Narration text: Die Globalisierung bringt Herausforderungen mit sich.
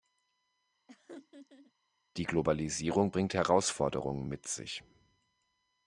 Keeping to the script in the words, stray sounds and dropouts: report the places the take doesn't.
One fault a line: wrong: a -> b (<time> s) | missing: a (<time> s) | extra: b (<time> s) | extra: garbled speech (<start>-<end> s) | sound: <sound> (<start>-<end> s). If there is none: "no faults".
sound: laugh (0.9-1.7 s)